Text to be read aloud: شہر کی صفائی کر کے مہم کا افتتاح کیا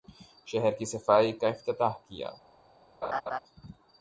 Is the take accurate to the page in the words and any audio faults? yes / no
no